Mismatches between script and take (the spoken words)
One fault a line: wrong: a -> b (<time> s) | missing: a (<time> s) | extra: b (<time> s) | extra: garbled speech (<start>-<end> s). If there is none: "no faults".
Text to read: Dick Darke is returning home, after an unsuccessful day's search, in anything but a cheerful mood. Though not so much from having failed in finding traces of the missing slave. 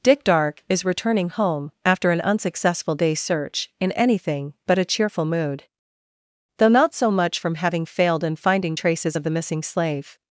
no faults